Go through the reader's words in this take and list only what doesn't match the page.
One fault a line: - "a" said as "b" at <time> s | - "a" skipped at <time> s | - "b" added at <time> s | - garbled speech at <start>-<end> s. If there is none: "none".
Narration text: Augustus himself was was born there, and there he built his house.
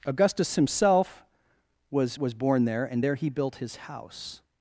none